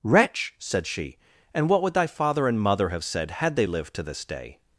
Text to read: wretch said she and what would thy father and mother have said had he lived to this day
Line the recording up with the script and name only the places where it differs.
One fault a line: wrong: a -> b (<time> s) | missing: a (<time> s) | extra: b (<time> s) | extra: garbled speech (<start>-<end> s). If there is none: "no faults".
wrong: he -> they (3.5 s)